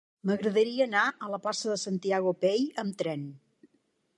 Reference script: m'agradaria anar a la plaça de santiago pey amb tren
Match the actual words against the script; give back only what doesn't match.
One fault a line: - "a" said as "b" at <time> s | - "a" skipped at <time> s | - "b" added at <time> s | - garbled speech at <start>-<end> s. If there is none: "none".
none